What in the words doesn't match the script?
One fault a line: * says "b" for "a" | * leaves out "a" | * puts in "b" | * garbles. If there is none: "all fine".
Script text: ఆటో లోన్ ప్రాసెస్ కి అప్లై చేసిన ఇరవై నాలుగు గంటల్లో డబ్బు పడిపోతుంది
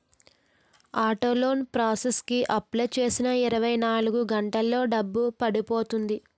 all fine